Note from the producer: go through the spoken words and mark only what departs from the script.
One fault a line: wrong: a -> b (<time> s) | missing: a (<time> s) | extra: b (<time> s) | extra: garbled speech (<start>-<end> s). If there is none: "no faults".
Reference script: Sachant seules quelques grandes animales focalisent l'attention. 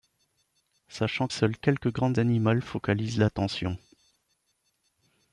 no faults